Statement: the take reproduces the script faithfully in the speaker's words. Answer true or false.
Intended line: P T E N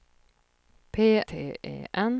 true